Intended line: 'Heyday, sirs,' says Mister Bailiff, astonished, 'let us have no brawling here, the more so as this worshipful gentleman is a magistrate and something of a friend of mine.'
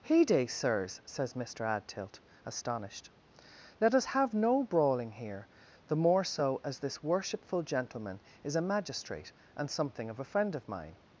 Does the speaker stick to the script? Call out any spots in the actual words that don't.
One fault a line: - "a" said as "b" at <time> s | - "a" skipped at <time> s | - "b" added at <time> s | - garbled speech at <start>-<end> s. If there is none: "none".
- "Bailiff" said as "Adtilt" at 1.6 s